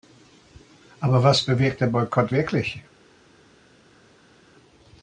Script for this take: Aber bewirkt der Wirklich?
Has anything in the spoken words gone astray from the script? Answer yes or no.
yes